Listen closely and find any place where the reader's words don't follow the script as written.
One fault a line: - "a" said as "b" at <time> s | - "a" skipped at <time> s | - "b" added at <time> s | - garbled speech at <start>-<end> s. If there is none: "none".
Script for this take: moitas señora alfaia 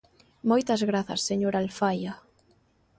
- "grazas" added at 0.9 s